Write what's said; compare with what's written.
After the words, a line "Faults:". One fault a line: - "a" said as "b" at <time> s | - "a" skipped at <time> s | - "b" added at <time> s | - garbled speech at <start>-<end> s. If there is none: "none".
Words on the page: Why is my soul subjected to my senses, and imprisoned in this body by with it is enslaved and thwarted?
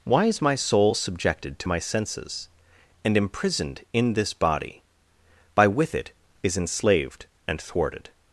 Why is my soul subjected to my senses, and imprisoned in this body by with it is enslaved and thwarted?
Faults:
none